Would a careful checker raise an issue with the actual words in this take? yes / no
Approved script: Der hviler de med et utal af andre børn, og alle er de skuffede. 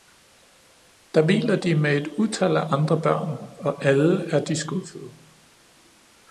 no